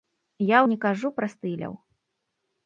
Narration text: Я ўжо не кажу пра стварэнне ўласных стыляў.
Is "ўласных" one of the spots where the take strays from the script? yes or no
yes